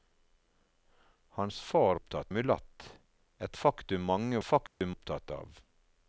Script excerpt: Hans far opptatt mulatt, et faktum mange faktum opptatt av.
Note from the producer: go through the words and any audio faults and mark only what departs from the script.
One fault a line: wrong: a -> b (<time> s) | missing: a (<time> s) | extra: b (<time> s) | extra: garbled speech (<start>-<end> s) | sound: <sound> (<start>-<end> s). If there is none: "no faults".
sound: dropout (4.7-4.8 s)